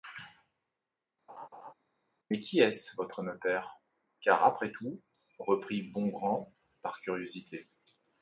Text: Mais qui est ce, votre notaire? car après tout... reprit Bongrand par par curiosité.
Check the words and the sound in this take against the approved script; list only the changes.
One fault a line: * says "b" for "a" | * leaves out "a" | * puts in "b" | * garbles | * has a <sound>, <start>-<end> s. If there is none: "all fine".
* has a laugh, 1.3-1.7 s
* leaves out "par"